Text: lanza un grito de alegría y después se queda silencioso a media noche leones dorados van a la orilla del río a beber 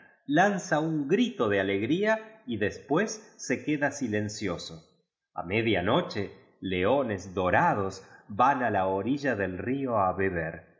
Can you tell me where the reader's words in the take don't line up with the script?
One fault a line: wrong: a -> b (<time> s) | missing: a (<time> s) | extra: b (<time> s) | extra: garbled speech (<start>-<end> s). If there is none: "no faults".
no faults